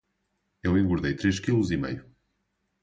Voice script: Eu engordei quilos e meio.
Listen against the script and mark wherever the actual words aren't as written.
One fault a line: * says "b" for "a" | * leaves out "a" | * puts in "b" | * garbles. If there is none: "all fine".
* puts in "três"